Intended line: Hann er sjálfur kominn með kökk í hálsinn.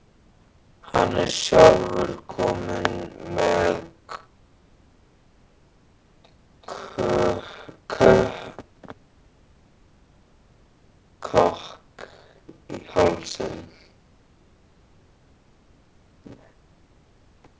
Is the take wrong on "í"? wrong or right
right